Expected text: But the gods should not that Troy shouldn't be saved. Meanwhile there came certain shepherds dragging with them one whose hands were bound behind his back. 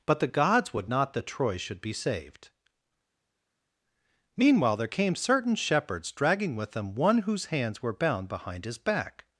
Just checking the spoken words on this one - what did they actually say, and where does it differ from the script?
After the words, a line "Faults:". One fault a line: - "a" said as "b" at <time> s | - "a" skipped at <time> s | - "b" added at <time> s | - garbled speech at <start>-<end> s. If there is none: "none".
But the gods would not that Troy should be saved. Meanwhile there came certain shepherds dragging with them one whose hands were bound behind his back.
Faults:
- "should" said as "would" at 0.7 s
- "shouldn't" said as "should" at 1.6 s